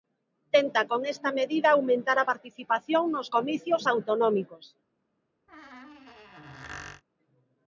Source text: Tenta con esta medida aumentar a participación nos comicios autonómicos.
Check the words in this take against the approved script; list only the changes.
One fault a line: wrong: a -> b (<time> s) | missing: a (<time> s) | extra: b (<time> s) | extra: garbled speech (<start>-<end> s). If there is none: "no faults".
no faults